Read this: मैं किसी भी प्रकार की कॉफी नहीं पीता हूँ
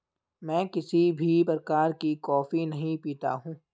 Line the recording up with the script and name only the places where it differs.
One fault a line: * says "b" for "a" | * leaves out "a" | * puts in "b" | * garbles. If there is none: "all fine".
all fine